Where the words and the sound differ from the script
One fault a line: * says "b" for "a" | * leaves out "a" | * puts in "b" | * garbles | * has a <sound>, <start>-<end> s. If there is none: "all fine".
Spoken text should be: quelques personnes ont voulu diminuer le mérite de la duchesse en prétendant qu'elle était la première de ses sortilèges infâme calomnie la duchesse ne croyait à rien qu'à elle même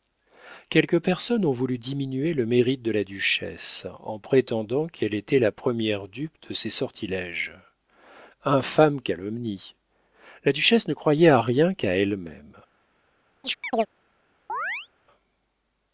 * puts in "dupe"
* has a chirp, 13.4-13.9 s
* has a chirp, 14.5-14.9 s